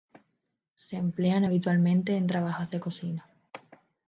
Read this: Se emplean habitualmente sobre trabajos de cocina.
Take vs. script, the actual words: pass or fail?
fail